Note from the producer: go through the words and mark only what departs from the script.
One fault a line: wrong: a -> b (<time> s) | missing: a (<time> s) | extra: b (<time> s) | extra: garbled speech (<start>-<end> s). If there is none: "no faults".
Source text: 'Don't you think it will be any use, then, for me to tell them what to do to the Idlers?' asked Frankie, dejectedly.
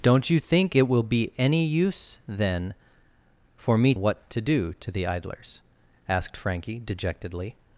missing: to tell them (3.9 s)